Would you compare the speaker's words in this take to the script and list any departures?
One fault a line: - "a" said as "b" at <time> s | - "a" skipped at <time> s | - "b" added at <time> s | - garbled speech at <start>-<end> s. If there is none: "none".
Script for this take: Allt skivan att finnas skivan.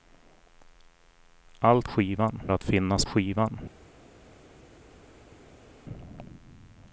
none